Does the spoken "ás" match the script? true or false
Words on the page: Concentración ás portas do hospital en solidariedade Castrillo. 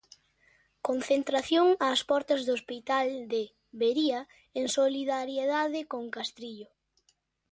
true